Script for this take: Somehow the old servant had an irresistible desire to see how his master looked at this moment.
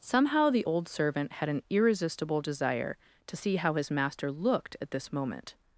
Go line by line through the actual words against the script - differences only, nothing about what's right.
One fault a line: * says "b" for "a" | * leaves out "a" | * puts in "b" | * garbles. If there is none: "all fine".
all fine